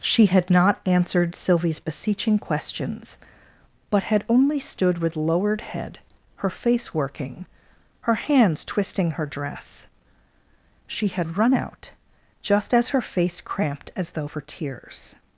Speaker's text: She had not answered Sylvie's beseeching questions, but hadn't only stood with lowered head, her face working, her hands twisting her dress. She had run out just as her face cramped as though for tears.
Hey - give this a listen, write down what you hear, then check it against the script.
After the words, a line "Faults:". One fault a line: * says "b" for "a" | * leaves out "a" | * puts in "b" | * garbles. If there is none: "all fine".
She had not answered Sylvie's beseeching questions, but had only stood with lowered head, her face working, her hands twisting her dress. She had run out just as her face cramped as though for tears.
Faults:
* says "had" for "hadn't"